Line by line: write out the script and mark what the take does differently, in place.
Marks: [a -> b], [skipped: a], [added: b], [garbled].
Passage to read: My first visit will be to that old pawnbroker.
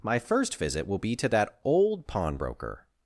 My first visit will be to that old pawnbroker.